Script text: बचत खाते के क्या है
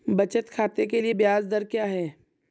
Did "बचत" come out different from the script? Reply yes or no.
no